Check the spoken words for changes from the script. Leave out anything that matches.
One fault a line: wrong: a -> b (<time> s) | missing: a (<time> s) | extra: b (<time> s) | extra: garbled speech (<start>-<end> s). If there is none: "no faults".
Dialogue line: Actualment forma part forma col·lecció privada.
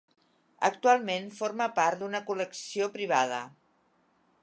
wrong: forma -> d'una (2.0 s)